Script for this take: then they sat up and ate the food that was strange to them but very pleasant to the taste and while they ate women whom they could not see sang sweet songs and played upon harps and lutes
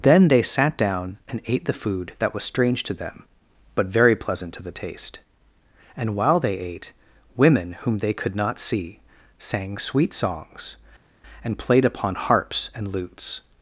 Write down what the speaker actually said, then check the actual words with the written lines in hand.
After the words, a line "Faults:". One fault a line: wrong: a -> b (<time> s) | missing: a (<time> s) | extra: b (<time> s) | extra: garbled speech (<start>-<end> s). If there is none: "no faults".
then they sat down and ate the food that was strange to them but very pleasant to the taste and while they ate women whom they could not see sang sweet songs and played upon harps and lutes
Faults:
wrong: up -> down (0.8 s)